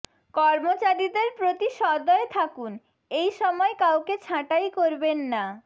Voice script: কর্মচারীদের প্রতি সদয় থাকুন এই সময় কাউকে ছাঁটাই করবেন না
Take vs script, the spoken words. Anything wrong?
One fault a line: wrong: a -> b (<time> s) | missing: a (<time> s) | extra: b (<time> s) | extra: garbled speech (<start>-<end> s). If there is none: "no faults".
no faults